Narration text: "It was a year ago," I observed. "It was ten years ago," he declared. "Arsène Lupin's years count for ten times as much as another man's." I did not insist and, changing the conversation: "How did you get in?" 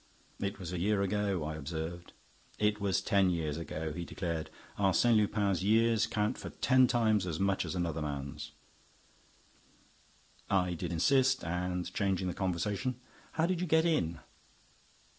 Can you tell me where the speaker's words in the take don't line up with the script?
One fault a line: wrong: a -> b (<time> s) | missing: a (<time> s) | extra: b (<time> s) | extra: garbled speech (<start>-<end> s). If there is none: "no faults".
missing: not (10.9 s)